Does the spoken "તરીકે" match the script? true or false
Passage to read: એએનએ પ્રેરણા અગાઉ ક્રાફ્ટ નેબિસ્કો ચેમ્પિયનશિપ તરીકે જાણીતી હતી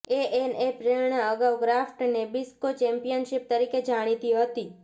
true